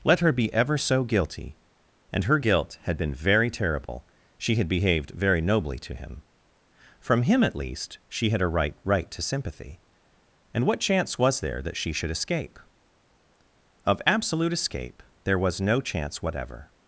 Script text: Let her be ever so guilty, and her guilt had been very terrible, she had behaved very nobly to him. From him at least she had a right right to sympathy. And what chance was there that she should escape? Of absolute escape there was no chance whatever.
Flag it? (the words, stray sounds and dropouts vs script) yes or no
yes